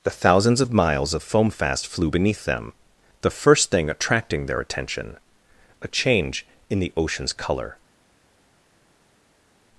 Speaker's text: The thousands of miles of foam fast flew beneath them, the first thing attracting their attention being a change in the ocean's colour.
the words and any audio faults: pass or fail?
fail